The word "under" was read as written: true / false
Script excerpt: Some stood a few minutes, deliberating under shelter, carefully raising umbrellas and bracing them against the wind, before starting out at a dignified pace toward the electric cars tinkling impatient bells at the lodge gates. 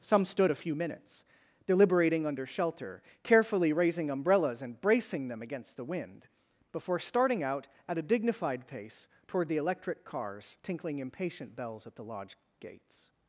true